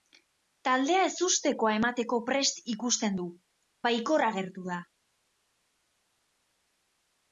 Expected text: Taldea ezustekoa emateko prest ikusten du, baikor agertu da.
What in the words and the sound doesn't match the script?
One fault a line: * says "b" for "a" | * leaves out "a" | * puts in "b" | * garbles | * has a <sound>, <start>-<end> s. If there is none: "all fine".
all fine